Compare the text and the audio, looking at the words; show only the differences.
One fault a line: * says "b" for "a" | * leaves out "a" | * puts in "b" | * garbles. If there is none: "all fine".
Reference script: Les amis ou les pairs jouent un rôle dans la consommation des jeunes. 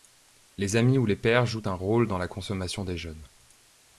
all fine